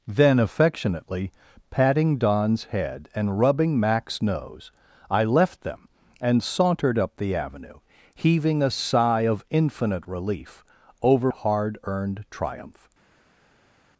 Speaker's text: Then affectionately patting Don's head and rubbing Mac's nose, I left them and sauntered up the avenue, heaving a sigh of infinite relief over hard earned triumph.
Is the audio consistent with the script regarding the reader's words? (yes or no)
yes